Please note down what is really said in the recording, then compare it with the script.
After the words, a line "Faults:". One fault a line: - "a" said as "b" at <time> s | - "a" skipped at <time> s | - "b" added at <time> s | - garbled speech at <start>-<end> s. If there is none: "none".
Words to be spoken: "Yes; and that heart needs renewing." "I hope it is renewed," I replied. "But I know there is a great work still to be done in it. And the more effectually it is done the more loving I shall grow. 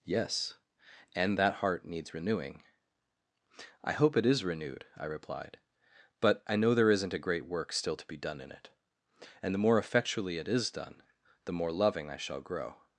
"Yes; and that heart needs renewing." "I hope it is renewed," I replied. "But I know there isn't a great work still to be done in it. And the more effectually it is done the more loving I shall grow.
Faults:
- "is" said as "isn't" at 6.9 s